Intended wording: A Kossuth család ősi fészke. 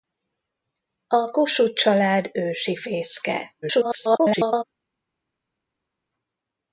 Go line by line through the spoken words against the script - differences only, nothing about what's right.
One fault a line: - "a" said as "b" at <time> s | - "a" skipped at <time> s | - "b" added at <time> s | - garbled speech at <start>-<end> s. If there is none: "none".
- garbled speech at 3.6-4.6 s